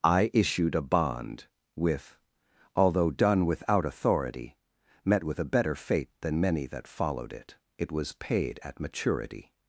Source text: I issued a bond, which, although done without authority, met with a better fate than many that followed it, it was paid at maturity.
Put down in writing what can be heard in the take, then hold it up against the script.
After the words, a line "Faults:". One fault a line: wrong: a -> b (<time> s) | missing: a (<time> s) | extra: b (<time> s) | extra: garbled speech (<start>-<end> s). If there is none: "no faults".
I issued a bond, with, although done without authority, met with a better fate than many that followed it, it was paid at maturity.
Faults:
wrong: which -> with (1.8 s)